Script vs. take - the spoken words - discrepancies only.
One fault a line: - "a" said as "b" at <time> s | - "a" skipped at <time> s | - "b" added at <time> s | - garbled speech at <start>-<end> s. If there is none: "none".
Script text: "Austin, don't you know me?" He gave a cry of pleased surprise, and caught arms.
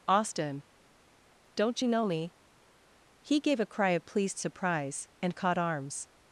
none